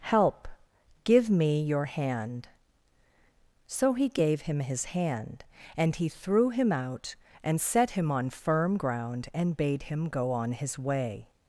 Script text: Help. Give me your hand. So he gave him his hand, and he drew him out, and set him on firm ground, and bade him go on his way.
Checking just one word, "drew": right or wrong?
wrong